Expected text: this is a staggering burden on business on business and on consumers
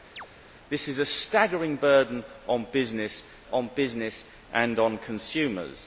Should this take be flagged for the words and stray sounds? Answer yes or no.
yes